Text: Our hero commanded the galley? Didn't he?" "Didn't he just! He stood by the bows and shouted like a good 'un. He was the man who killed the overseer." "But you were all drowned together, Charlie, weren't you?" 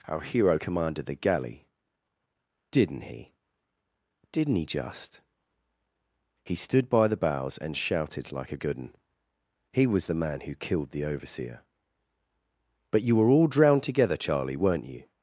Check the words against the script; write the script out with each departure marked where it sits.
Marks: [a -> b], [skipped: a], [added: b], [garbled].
Our hero commanded the galley? Didn't he?" "Didn't he just! He stood by the bows and shouted like a good 'un. He was the man who killed the overseer." "But you were all drowned together, Charlie, weren't you?"